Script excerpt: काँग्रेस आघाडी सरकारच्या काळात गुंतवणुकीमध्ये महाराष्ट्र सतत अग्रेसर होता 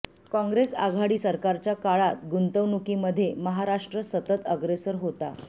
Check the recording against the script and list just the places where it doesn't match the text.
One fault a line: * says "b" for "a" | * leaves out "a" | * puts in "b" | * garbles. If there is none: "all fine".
all fine